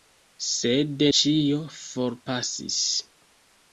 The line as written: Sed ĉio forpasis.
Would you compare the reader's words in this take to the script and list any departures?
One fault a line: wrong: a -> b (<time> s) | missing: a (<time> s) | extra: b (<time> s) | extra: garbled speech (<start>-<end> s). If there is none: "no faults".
no faults